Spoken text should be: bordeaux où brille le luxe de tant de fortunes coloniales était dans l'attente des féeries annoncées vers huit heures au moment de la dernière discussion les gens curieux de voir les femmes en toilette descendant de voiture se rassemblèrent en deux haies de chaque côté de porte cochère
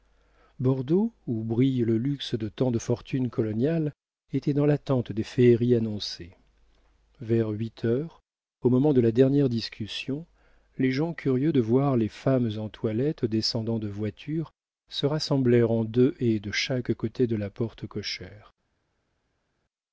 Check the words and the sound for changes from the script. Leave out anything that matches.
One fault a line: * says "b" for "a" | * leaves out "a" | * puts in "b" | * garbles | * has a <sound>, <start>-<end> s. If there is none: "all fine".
* puts in "la"